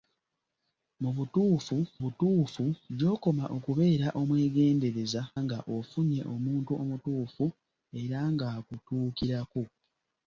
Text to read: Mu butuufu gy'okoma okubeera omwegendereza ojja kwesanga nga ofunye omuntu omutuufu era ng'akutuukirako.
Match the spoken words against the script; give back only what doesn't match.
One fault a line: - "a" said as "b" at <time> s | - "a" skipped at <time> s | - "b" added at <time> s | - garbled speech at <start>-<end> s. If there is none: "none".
- "butuufu" added at 2.0 s
- "ojja kwesanga" skipped at 5.2 s